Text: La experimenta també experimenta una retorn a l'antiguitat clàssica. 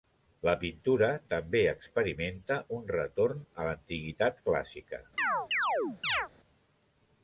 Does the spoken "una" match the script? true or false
false